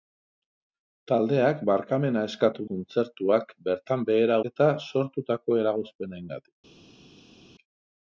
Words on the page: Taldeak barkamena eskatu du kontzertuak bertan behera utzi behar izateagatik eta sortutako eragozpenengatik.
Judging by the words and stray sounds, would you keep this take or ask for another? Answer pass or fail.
fail